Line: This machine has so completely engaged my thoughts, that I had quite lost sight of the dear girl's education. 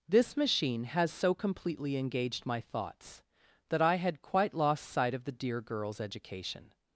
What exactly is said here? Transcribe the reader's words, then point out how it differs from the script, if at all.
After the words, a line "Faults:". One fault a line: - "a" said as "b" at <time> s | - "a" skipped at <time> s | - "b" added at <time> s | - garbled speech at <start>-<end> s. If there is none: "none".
This machine has so completely engaged my thoughts, that I had quite lost sight of the dear girl's education.
Faults:
none